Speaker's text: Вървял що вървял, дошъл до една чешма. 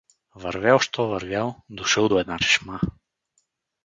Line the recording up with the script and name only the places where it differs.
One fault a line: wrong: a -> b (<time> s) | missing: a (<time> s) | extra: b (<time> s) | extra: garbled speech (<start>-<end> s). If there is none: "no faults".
no faults